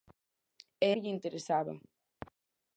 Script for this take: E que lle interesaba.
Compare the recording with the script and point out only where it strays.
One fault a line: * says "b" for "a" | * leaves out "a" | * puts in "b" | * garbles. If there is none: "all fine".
all fine